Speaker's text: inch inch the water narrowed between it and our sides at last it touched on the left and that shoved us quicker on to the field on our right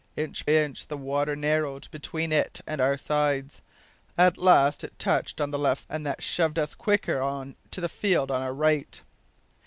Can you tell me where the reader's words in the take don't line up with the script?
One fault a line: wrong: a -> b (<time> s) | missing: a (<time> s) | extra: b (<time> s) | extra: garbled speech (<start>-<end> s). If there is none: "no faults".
no faults